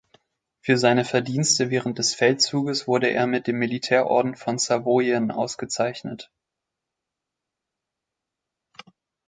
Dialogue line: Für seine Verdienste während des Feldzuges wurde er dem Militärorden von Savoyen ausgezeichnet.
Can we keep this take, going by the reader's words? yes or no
no